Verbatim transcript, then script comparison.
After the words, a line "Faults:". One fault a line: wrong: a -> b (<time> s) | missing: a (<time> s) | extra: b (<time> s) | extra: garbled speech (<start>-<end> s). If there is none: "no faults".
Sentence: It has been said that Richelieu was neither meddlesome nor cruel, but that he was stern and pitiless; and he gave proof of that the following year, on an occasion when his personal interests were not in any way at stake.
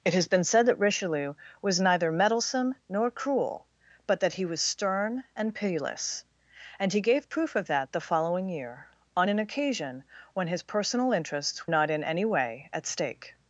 It has been said that Richelieu was neither meddlesome nor cruel, but that he was stern and pitiless; and he gave proof of that the following year, on an occasion when his personal interests not in any way at stake.
Faults:
missing: were (11.7 s)